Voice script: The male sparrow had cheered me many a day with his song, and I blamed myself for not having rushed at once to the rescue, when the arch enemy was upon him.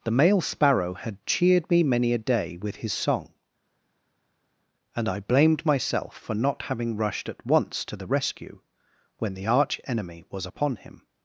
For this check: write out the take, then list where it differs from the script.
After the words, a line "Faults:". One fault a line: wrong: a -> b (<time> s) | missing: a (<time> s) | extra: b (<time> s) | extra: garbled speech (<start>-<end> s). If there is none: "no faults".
The male sparrow had cheered me many a day with his song, and I blamed myself for not having rushed at once to the rescue, when the arch enemy was upon him.
Faults:
no faults